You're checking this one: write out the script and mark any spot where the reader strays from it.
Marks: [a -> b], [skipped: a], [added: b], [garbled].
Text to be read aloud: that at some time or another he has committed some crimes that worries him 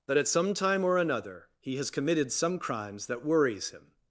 that at some time or another he has committed some crimes that worries him